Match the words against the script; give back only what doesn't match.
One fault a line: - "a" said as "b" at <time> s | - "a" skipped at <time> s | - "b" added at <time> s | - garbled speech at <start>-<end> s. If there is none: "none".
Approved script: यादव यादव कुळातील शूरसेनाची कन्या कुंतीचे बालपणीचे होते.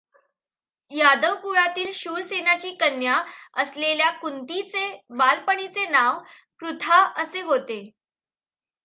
- "यादव" skipped at 1.4 s
- "असलेल्या" added at 3.5 s
- "नाव पृथा असे" added at 5.9 s